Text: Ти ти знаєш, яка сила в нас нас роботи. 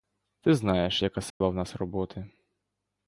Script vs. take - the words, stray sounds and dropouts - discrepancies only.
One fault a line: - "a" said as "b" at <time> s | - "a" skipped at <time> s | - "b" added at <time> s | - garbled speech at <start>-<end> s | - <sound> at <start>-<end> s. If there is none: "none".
- "ти" skipped at 0.5 s
- dropout at 1.3-1.4 s
- "нас" skipped at 1.7 s